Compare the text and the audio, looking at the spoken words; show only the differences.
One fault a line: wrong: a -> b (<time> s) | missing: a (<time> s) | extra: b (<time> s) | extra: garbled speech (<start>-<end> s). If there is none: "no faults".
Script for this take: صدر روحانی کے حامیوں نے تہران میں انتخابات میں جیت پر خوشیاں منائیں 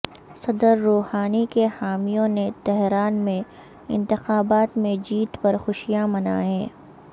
no faults